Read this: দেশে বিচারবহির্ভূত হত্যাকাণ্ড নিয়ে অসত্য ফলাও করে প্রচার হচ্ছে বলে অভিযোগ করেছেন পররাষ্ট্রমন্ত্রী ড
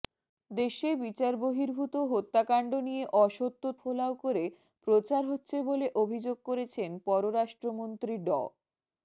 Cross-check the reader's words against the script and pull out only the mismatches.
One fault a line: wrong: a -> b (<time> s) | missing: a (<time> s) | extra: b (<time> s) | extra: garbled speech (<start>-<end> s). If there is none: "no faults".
no faults